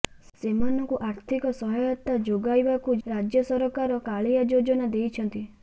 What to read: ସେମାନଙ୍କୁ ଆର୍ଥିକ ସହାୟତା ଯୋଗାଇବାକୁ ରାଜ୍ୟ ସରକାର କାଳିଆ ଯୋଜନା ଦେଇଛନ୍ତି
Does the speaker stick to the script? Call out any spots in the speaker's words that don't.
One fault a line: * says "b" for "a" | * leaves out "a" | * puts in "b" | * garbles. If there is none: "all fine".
all fine